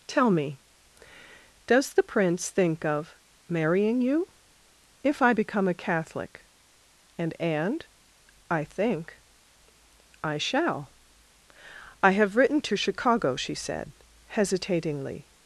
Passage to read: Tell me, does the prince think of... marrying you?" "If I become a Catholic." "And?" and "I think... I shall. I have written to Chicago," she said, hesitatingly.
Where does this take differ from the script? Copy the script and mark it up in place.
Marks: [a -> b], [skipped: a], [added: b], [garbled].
Tell me, does the prince think of... marrying you?" "If I become a Catholic." "And?" and "I think... I shall. I have written to Chicago," she said, hesitatingly.